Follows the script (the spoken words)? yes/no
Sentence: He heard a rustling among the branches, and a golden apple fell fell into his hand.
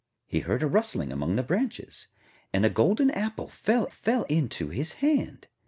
yes